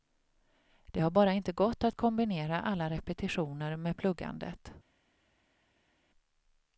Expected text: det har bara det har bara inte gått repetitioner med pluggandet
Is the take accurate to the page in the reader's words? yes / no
no